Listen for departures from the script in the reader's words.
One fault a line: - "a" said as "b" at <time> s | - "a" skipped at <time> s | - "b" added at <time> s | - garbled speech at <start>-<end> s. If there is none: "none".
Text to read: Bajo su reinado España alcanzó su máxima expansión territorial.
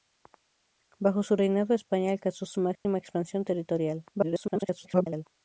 - garbled speech at 4.1-5.2 s